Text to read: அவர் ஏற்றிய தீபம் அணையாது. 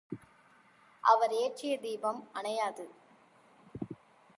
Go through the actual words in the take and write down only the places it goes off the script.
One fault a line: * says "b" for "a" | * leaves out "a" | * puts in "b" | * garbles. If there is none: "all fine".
all fine